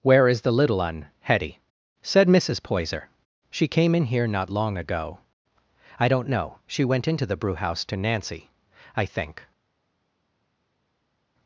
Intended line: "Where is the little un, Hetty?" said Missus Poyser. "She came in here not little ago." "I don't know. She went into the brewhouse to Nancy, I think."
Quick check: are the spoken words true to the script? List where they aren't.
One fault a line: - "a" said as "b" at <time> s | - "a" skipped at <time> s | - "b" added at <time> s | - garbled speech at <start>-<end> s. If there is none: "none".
- "little" said as "long" at 4.5 s